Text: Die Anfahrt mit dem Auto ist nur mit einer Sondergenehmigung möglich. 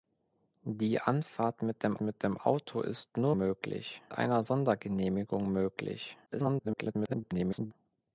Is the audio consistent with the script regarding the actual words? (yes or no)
no